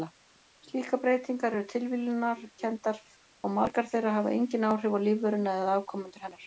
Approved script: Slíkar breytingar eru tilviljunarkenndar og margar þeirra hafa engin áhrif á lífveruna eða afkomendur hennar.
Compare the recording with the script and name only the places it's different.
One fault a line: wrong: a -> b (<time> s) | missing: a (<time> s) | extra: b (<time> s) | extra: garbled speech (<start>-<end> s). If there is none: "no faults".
no faults